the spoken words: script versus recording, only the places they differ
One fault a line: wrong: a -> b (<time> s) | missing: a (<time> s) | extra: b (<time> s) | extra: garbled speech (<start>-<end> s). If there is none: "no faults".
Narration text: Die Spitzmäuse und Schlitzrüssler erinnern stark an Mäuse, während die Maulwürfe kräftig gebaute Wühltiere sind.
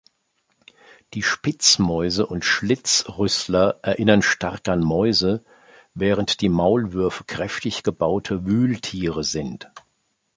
no faults